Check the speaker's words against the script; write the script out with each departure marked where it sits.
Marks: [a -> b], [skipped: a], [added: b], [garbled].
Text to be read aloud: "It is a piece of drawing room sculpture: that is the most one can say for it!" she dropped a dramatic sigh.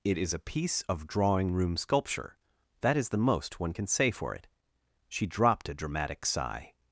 "It is a piece of drawing room sculpture: that is the most one can say for it!" she dropped a dramatic sigh.